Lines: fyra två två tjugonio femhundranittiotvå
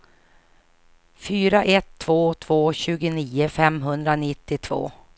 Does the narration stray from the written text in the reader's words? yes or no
yes